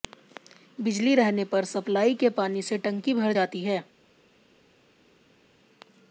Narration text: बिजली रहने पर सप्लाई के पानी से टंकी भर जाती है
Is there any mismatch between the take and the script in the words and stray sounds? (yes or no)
no